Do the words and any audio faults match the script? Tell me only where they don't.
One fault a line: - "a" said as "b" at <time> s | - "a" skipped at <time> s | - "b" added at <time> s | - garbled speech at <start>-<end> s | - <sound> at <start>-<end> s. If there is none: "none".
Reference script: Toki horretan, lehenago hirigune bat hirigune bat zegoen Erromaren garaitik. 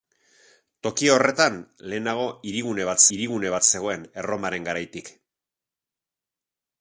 none